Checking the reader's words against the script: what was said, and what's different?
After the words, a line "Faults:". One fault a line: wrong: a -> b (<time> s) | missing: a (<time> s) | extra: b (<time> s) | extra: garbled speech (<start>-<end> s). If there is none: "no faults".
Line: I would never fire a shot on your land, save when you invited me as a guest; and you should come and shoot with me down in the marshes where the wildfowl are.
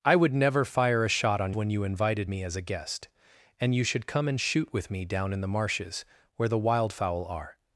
I would never fire a shot on when you invited me as a guest; and you should come and shoot with me down in the marshes where the wildfowl are.
Faults:
missing: your land save (1.5 s)